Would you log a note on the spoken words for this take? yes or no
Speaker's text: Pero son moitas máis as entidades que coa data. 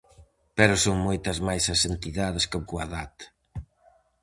no